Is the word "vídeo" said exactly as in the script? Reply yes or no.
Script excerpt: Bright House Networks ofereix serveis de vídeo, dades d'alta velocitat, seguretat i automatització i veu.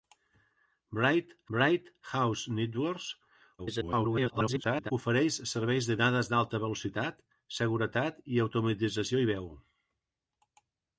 no